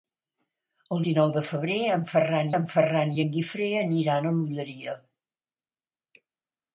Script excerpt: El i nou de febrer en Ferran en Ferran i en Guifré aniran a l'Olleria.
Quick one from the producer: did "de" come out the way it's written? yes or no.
yes